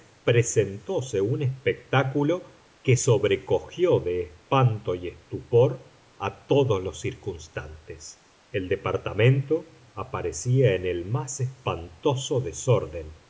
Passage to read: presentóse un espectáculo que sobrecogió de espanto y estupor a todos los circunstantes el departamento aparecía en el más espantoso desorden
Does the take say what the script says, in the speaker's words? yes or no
yes